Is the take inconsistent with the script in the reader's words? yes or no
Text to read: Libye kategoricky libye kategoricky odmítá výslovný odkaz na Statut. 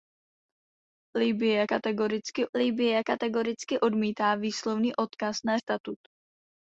no